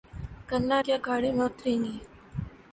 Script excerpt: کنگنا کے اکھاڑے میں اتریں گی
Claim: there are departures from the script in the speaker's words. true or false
false